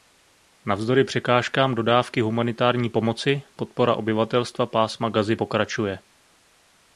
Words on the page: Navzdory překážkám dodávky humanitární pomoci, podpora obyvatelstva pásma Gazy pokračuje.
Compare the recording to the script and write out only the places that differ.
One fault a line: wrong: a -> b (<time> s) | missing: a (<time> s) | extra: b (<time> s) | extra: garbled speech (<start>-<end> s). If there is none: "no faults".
no faults